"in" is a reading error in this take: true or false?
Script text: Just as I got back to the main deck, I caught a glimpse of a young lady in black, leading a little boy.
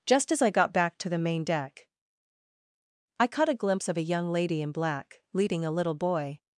false